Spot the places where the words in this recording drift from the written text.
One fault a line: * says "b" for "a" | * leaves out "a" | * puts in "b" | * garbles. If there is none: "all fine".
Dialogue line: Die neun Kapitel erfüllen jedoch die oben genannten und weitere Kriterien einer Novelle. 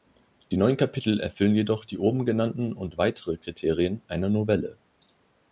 all fine